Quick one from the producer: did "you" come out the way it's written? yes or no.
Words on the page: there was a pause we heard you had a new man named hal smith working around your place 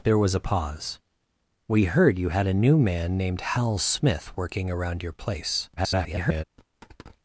yes